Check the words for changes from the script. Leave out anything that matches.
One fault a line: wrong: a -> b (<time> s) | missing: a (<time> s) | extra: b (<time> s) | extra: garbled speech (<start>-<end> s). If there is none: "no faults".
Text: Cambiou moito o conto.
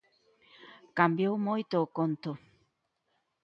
no faults